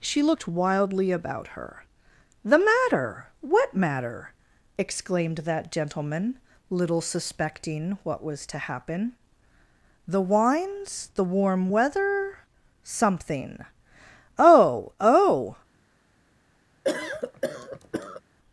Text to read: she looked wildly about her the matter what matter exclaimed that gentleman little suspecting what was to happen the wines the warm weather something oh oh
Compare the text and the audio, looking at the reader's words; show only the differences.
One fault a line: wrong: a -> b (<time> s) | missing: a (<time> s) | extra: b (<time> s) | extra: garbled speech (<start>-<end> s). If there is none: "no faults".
no faults